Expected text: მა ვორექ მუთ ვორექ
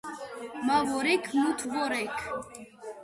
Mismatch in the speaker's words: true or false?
false